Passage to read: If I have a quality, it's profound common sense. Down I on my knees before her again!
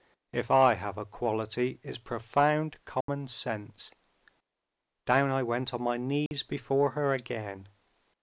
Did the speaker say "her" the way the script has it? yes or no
yes